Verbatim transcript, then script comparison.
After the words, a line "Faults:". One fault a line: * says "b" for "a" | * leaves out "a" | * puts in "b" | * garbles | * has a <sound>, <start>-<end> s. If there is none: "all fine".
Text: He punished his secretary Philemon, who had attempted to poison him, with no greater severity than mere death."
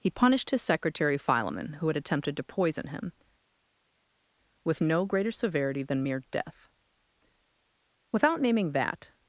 He punished his secretary Philemon, who had attempted to poison him, with no greater severity than mere death." Without naming that
Faults:
* puts in "Without naming that"